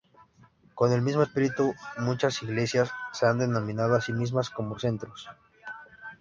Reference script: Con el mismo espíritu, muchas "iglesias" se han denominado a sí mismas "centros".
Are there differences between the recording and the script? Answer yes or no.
yes